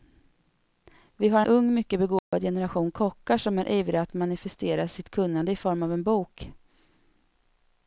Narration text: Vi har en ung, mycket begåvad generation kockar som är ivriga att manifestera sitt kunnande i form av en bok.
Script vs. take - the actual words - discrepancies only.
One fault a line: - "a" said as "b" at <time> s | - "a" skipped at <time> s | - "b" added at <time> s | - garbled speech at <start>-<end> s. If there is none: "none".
- "en" skipped at 1.4 s